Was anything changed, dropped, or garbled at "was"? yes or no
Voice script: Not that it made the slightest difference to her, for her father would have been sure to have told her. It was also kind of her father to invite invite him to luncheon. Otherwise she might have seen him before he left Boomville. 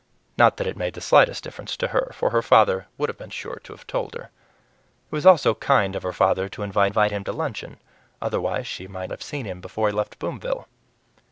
no